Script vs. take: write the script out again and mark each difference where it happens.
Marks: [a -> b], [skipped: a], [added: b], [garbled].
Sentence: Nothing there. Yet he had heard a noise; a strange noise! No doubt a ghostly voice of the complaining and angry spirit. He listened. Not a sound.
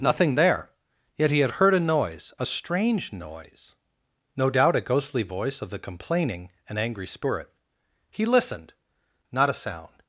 Nothing there. Yet he had heard a noise; a strange noise! No doubt a ghostly voice of the complaining and angry spirit. He listened. Not a sound.